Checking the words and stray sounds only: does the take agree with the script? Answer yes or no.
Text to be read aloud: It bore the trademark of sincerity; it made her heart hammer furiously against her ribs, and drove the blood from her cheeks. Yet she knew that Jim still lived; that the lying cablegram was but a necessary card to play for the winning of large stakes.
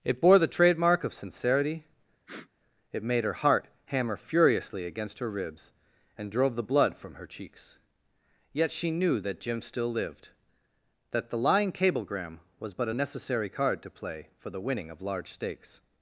no